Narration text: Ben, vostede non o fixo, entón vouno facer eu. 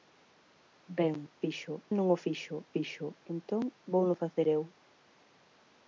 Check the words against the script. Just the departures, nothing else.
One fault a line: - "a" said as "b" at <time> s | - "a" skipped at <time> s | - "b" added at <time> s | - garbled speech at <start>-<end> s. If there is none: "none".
- "vostede" said as "fixo" at 1.4 s
- "fixo" added at 2.7 s